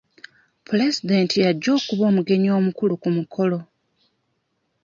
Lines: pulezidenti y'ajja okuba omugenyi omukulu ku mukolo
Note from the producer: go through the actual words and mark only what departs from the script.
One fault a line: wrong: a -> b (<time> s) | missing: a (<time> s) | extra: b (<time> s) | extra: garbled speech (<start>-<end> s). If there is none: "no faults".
no faults